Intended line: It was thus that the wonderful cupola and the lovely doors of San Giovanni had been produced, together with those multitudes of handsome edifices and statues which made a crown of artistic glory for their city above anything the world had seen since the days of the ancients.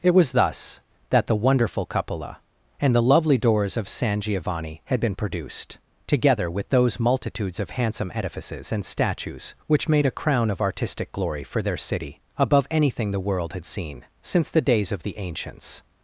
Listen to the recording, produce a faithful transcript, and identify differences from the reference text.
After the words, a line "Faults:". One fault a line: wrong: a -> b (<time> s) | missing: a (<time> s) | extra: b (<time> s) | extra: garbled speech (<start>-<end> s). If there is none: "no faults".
It was thus that the wonderful cupola and the lovely doors of San Giovanni had been produced, together with those multitudes of handsome edifices and statues which made a crown of artistic glory for their city above anything the world had seen since the days of the ancients.
Faults:
no faults